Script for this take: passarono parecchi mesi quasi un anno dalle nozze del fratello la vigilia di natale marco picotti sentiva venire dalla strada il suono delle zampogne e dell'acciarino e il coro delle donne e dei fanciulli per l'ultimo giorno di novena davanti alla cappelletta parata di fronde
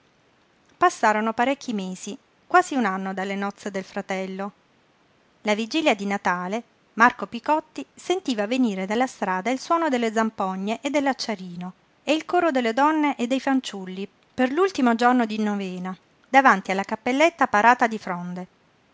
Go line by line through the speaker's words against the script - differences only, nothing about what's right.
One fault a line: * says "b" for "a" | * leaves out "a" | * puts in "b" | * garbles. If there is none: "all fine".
all fine